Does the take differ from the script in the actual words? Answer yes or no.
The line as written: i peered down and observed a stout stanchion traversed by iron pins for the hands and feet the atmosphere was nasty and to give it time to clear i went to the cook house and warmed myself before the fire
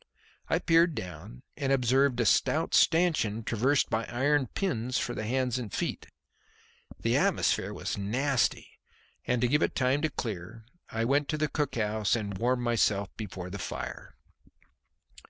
no